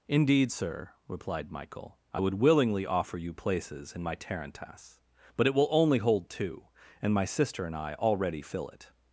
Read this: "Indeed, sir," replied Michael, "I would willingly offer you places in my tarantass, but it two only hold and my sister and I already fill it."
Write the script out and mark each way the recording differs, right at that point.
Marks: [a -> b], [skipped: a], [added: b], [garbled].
"Indeed, sir," replied Michael, "I would willingly offer you places in my tarantass, but it [two -> will] only hold [added: two] and my sister and I already fill it."